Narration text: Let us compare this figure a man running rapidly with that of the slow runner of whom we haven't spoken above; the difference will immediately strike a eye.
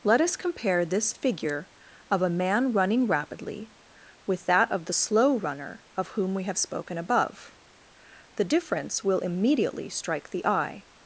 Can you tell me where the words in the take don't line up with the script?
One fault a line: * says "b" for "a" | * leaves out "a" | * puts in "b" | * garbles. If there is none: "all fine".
* puts in "of"
* says "have" for "haven't"
* says "the" for "a"